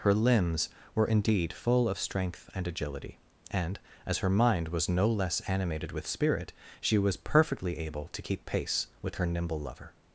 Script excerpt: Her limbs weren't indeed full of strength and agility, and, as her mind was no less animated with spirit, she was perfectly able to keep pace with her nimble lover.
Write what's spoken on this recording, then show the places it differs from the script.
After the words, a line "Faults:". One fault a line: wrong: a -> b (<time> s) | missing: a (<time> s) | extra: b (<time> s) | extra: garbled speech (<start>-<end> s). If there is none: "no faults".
Her limbs were indeed full of strength and agility, and, as her mind was no less animated with spirit, she was perfectly able to keep pace with her nimble lover.
Faults:
wrong: weren't -> were (0.9 s)